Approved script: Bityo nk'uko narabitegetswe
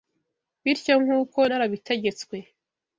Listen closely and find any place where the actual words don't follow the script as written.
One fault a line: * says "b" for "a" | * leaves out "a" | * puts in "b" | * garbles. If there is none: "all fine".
all fine